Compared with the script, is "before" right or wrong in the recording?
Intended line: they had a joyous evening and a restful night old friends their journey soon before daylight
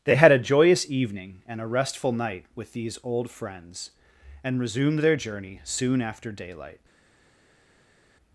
wrong